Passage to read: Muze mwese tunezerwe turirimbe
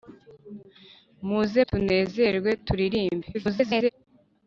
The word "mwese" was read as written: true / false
false